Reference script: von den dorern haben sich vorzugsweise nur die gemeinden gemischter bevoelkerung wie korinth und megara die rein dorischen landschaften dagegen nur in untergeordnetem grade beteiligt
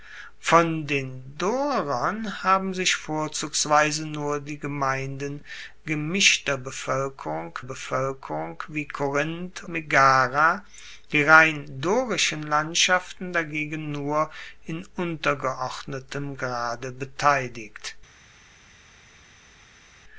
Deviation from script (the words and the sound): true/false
true